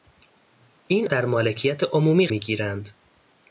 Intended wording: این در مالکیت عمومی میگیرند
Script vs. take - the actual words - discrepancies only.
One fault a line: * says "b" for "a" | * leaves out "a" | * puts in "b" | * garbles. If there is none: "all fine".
all fine